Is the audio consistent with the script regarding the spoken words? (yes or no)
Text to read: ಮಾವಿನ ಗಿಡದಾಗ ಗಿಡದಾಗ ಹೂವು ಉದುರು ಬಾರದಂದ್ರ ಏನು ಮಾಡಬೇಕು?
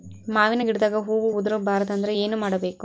no